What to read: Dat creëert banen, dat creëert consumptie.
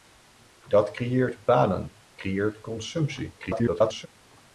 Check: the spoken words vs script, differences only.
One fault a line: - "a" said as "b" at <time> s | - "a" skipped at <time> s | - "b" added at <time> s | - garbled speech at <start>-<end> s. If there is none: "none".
- "dat" skipped at 1.9 s
- garbled speech at 3.4-4.1 s